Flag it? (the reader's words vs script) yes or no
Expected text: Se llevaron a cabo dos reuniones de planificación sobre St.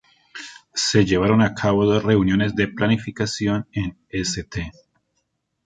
yes